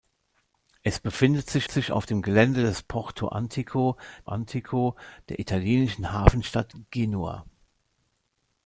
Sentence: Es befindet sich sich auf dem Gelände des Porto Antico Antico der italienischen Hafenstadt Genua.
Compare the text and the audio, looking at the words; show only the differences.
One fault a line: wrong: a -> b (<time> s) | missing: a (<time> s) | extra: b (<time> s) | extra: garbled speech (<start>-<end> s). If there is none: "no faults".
no faults